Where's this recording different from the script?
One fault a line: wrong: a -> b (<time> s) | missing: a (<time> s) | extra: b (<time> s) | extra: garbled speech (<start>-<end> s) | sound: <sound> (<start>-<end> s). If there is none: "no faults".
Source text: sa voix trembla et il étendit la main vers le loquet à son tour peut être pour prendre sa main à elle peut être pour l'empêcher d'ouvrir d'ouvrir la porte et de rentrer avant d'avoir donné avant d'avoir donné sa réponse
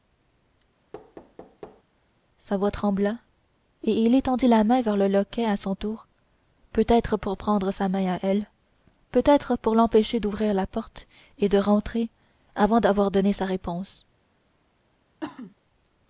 sound: thud (0.9-1.8 s)
missing: d'ouvrir (10.5 s)
missing: avant d'avoir donné (13.3 s)
sound: cough (15.2-15.5 s)